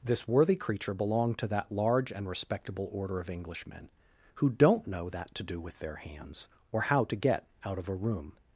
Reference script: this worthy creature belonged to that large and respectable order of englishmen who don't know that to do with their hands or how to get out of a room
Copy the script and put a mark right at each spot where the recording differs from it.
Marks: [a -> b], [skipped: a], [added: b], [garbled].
this worthy creature belonged to that large and respectable order of englishmen who don't know that to do with their hands or how to get out of a room